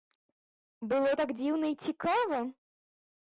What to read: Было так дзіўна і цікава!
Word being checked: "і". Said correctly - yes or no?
yes